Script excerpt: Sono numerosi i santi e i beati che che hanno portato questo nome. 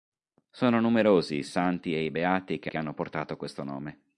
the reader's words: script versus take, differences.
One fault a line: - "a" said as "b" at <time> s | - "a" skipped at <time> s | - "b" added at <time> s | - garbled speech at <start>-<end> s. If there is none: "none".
none